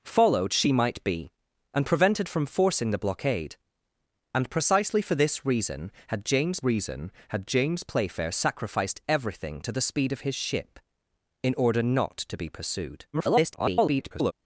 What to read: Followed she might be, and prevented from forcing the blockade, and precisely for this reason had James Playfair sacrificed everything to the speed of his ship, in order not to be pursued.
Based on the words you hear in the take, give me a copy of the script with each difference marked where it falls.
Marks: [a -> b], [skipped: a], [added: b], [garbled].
Followed she might be, and prevented from forcing the blockade, and precisely for this reason had James [added: reason had James] Playfair sacrificed everything to the speed of his ship, in order not to be pursued. [garbled]